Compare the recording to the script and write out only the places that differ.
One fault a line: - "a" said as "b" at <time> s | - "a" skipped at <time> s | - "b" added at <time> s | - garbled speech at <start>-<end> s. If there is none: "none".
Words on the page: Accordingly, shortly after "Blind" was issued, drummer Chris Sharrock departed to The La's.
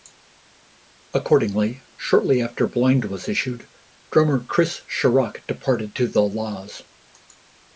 none